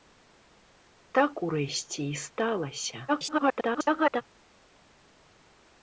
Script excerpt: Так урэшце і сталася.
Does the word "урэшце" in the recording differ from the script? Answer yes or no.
no